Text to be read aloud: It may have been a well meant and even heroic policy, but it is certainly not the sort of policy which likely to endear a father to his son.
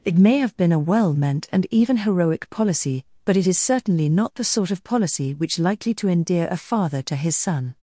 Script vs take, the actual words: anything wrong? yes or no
no